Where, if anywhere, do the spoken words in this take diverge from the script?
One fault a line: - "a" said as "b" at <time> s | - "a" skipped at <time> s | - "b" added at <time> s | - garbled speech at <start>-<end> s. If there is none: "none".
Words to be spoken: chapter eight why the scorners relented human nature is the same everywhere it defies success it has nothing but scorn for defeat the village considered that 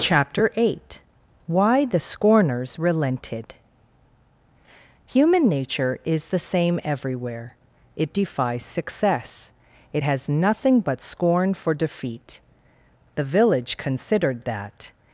none